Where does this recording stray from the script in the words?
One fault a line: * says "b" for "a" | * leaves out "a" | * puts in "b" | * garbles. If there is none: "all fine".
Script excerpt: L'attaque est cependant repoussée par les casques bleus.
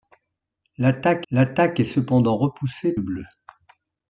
* puts in "l'attaque"
* leaves out "par les casques"